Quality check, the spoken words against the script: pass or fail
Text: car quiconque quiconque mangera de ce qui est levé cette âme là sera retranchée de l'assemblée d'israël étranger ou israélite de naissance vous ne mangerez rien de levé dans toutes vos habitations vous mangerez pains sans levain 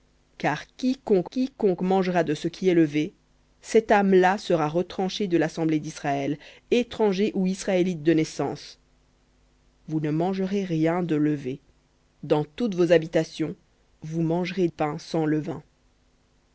pass